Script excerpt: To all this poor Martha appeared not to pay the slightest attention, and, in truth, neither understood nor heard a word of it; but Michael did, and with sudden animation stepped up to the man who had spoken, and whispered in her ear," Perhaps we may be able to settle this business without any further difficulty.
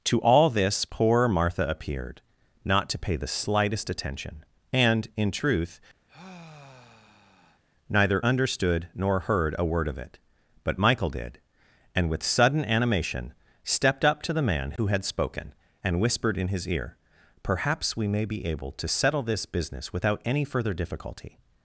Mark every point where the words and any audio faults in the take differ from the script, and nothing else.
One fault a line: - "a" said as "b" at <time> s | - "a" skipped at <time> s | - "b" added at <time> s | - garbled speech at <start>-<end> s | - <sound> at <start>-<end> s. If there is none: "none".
- sigh at 6.1-7.6 s
- "her" said as "his" at 16.5 s